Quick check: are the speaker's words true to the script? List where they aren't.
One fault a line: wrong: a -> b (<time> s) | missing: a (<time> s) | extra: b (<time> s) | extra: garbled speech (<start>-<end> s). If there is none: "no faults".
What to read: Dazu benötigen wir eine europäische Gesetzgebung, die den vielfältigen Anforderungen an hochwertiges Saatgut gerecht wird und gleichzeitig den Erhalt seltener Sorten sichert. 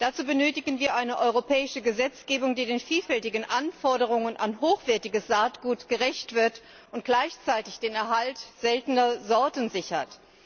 no faults